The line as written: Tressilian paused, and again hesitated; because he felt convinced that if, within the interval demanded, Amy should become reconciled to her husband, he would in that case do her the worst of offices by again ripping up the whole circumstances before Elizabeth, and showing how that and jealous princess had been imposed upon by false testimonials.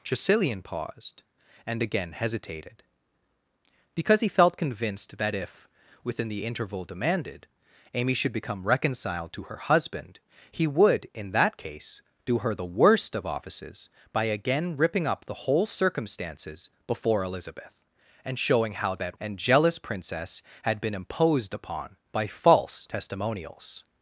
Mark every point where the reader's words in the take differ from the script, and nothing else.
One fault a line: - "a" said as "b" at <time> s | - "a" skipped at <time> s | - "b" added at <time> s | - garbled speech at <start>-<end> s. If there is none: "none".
none